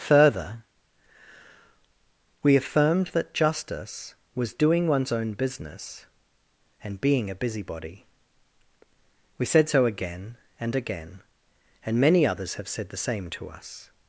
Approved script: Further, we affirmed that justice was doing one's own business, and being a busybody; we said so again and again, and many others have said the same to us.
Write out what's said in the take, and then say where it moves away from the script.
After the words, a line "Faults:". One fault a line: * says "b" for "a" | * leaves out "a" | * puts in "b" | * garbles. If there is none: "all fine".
Further, we affirmed that justice was doing one's own business, and being a busybody; we said so again and again, and many others have said the same to us.
Faults:
all fine